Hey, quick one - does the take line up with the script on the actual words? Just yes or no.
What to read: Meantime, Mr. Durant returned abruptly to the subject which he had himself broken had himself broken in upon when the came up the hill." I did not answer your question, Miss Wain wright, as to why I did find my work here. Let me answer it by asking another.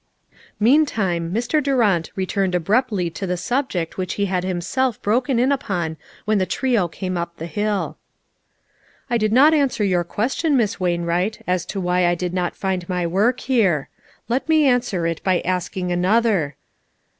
no